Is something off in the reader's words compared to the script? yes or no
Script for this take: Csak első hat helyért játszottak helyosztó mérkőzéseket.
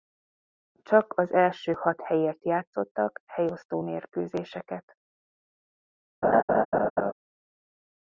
yes